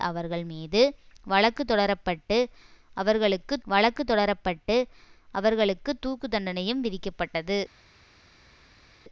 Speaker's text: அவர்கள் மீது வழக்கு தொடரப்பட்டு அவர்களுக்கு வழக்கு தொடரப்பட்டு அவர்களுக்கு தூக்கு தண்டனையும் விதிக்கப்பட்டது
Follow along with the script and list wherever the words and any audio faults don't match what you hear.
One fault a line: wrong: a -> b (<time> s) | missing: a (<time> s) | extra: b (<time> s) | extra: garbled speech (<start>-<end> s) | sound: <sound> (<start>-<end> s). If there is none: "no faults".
no faults